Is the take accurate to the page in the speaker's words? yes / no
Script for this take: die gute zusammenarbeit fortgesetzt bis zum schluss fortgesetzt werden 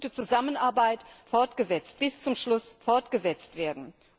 yes